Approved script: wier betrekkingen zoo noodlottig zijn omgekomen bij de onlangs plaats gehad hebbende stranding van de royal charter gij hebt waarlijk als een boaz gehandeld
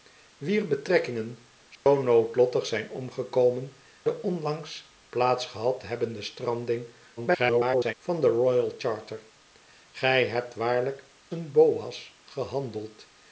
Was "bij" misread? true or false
true